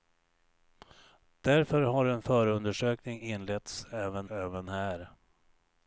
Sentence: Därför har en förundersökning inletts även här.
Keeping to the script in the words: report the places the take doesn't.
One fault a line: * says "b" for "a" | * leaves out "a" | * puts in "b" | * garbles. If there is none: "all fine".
* puts in "även"